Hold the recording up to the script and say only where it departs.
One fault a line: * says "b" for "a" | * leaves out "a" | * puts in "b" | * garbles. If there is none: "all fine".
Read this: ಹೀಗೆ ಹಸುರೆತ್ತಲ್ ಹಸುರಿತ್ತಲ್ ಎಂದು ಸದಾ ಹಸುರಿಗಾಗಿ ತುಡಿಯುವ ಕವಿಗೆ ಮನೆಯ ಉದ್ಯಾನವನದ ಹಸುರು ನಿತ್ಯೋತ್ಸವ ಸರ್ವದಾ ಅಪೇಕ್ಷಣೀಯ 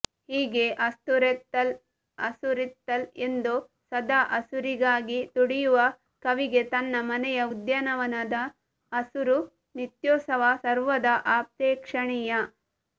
* puts in "ತನ್ನ"